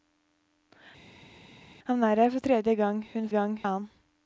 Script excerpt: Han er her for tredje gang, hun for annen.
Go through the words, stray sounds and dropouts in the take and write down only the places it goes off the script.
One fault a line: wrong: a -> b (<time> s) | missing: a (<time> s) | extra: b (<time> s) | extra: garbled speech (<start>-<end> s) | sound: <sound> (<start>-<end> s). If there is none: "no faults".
wrong: for -> gang (3.3 s)